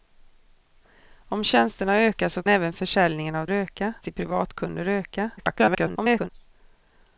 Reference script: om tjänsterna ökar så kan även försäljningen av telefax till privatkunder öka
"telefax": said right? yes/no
no